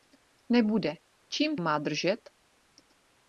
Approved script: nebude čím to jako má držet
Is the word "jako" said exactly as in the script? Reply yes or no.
no